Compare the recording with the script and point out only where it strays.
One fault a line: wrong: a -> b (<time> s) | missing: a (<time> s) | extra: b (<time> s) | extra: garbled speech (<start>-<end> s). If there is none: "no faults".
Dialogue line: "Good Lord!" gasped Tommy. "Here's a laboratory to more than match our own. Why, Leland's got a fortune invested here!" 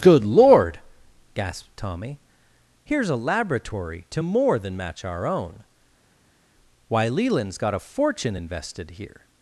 no faults